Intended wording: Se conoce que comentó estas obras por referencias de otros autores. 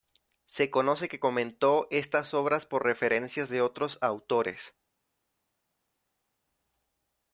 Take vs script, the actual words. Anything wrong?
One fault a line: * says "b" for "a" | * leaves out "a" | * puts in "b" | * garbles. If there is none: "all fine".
all fine